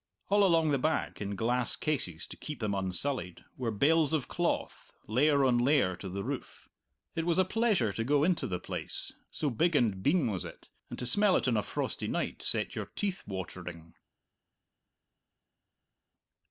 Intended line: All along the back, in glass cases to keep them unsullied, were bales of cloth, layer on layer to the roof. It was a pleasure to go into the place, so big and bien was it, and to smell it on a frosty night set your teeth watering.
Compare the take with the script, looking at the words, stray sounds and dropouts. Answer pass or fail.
pass